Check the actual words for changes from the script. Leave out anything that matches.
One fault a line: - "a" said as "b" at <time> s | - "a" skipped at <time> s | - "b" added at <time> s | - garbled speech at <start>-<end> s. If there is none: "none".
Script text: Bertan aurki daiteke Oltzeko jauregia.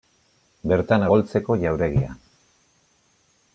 - "aurki daiteke" skipped at 1.1 s